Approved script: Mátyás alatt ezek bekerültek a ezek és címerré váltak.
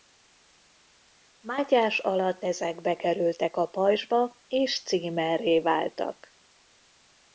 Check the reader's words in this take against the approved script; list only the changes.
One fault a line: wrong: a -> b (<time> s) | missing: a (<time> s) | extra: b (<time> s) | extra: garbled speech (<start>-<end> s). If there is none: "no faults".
wrong: ezek -> pajzsba (3.6 s)